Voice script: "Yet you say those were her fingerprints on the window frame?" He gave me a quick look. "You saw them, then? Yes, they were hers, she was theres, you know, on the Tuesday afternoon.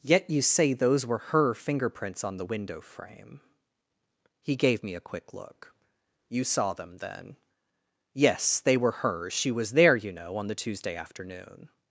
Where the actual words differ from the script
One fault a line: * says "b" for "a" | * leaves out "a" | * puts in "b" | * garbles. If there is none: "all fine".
* says "there" for "theres"